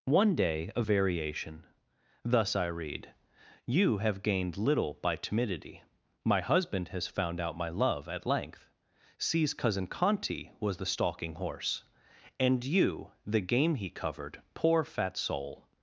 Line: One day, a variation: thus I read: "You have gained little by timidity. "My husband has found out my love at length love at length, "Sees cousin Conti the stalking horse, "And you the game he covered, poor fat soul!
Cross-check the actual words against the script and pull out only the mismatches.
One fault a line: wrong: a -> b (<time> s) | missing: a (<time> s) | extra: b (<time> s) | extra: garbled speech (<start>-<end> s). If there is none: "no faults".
missing: love at length (8.7 s)
extra: was (10.6 s)